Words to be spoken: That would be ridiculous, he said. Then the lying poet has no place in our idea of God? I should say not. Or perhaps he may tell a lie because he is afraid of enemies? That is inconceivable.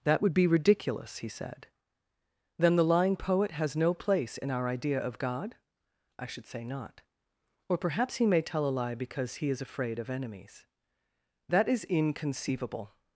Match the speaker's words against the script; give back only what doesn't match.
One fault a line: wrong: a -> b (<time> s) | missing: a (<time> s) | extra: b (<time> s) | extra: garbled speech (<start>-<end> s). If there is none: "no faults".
no faults